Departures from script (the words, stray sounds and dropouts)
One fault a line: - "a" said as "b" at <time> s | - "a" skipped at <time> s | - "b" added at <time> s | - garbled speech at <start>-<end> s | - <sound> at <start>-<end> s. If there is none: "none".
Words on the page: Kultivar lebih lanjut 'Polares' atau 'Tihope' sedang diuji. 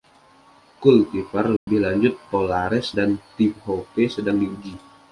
- dropout at 1.6-1.7 s
- "atau" said as "dan" at 2.9 s